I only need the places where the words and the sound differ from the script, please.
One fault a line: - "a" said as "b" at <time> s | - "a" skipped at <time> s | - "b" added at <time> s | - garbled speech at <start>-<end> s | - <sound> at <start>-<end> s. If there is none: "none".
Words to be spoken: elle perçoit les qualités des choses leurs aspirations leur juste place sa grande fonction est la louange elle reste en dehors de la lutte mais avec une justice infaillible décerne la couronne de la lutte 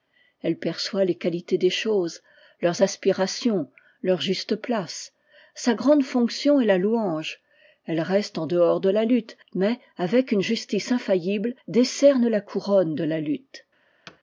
- thud at 14.1-14.2 s